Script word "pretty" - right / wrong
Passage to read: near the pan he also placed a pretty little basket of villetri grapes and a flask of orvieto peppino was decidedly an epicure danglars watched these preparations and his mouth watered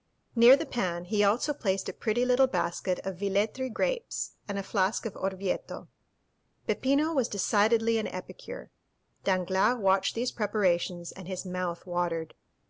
right